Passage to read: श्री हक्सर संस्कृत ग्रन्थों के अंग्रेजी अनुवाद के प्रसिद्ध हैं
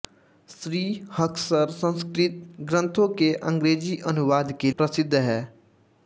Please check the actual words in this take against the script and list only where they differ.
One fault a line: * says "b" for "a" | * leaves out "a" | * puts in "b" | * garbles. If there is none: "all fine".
all fine